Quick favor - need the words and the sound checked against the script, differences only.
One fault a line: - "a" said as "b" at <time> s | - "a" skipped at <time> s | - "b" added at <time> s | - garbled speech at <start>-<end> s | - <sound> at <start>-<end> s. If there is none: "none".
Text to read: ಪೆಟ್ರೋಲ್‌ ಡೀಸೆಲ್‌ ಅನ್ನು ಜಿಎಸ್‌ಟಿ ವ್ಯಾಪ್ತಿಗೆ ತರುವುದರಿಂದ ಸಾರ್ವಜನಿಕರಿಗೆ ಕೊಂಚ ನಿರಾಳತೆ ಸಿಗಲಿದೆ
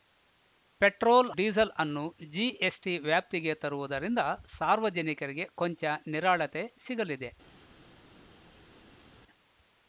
none